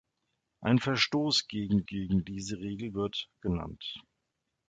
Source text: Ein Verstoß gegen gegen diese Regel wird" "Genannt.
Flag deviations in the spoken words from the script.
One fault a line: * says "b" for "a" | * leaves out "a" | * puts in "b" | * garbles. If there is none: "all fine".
all fine